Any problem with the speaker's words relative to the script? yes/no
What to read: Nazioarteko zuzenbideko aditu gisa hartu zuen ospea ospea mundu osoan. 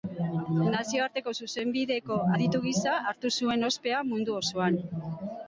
yes